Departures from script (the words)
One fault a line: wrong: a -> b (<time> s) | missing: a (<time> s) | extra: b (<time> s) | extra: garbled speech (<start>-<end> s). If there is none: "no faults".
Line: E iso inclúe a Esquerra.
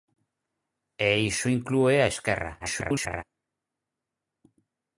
extra: garbled speech (2.6-3.2 s)